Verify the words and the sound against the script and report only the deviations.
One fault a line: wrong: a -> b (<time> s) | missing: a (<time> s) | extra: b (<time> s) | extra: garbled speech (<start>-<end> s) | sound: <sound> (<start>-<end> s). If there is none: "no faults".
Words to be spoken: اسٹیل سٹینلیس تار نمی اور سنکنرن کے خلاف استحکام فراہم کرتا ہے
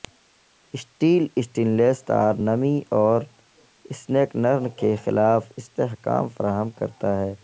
no faults